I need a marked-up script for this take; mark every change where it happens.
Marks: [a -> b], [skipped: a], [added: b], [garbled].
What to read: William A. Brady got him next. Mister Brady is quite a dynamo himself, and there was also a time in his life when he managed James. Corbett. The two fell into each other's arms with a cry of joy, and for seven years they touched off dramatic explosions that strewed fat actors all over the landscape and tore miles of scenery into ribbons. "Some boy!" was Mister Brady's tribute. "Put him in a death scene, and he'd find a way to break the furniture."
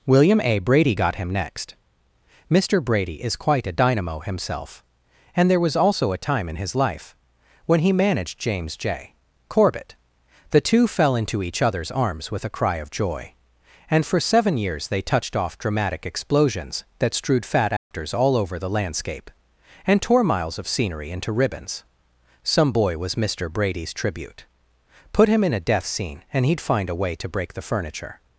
William A. Brady got him next. Mister Brady is quite a dynamo himself, and there was also a time in his life when he managed James. [added: J] Corbett. The two fell into each other's arms with a cry of joy, and for seven years they touched off dramatic explosions that strewed fat actors all over the landscape and tore miles of scenery into ribbons. "Some boy!" was Mister Brady's tribute. "Put him in a death scene, and he'd find a way to break the furniture."